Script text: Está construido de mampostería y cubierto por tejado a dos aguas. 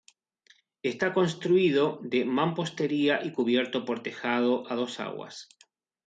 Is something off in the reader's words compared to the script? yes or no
no